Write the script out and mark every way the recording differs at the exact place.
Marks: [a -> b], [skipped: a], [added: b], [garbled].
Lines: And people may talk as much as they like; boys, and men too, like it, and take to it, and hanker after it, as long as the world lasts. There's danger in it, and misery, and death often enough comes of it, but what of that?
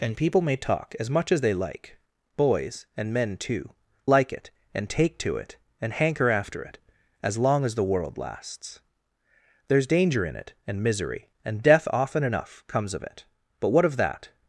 And people may talk as much as they like; boys, and men too, like it, and take to it, and hanker after it, as long as the world lasts. There's danger in it, and misery, and death often enough comes of it, but what of that?